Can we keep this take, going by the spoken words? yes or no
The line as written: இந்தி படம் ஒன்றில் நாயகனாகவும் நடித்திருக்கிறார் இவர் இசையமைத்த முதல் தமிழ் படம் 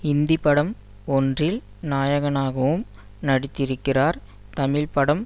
no